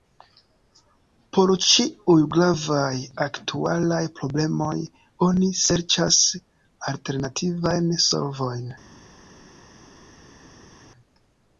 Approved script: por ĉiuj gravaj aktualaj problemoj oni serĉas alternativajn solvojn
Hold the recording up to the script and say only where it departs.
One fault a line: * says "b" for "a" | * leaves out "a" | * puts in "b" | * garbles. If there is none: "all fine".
all fine